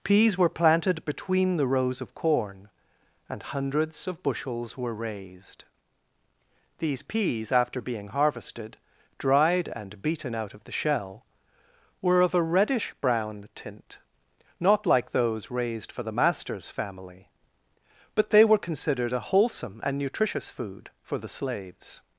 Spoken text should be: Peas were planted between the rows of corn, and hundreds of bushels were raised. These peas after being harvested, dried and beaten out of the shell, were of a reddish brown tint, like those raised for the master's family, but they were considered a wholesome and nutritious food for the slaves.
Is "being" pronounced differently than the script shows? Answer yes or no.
no